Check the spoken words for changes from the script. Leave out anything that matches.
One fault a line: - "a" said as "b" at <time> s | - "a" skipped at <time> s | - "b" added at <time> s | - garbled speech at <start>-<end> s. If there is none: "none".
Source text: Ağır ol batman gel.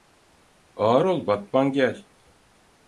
none